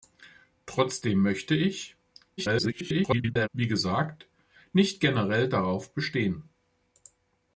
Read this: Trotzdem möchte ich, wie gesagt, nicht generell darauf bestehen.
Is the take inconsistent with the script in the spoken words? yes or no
yes